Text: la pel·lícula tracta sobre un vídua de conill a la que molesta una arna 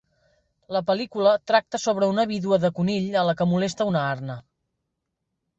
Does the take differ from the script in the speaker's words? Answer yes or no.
yes